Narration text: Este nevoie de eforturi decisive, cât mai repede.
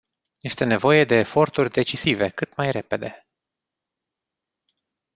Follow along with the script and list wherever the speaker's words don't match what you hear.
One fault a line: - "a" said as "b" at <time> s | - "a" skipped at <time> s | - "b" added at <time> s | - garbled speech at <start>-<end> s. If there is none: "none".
none